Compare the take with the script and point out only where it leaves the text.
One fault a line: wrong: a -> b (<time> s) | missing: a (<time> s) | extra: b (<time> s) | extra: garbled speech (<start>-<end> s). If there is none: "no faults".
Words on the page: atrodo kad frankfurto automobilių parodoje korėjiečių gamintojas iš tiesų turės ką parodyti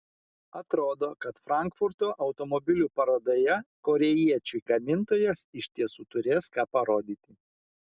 no faults